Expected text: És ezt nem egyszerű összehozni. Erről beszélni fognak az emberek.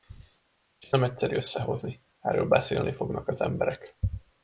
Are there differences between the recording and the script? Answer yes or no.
yes